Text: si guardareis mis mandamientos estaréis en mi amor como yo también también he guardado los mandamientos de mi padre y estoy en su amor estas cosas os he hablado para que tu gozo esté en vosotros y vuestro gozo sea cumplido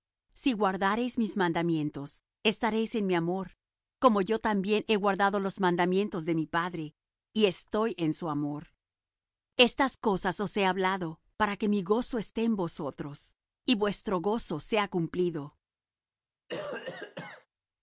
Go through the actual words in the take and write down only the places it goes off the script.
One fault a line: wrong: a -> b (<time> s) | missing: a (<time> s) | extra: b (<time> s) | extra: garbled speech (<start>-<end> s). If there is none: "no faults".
missing: también (4.8 s)
wrong: tu -> mi (11.7 s)